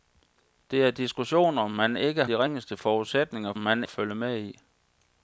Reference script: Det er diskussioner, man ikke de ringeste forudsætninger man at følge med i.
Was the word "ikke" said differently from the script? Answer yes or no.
no